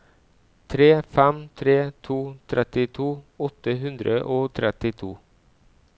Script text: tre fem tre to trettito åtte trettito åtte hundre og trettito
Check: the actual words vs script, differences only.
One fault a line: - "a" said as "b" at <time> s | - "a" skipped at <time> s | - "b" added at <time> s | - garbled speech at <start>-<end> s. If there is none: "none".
- "trettito åtte" skipped at 3.8 s